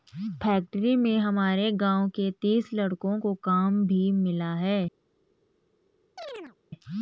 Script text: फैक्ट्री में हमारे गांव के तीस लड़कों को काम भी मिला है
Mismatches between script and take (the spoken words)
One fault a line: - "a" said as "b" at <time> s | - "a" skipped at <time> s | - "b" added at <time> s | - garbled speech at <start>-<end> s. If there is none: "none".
none